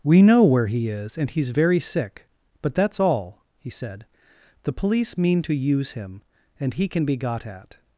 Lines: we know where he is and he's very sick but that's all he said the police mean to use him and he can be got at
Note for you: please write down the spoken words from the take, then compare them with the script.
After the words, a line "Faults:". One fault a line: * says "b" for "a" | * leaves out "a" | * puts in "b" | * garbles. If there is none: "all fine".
we know where he is and he's very sick but that's all he said the police mean to use him and he can be got at
Faults:
all fine